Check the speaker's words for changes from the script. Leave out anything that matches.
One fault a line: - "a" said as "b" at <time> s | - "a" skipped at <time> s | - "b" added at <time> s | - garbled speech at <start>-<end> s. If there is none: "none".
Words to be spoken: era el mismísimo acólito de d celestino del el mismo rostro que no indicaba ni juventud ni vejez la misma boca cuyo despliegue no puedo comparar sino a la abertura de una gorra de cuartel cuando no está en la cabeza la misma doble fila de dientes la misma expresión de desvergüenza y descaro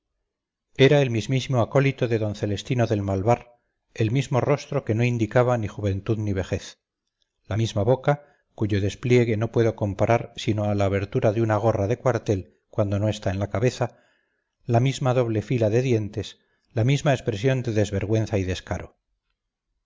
- "malvar" added at 3.0 s